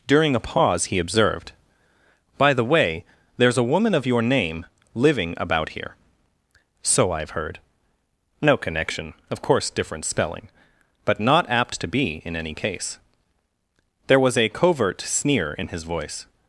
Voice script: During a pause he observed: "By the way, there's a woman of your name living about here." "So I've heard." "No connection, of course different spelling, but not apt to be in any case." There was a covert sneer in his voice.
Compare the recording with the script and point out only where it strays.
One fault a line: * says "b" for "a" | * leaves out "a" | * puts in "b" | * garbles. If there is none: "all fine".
all fine